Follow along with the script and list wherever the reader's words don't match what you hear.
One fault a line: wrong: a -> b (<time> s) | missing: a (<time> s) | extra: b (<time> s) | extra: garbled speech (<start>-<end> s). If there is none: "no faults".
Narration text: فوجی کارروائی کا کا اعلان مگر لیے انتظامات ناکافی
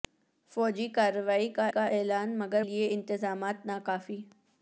no faults